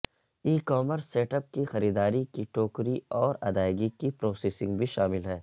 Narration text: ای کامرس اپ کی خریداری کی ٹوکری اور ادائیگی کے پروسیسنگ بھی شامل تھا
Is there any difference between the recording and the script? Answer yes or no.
yes